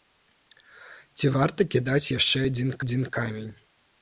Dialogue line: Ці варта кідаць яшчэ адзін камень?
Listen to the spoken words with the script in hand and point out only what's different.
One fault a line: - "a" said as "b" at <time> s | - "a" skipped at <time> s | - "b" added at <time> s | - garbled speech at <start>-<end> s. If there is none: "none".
- "адзін" added at 2.8 s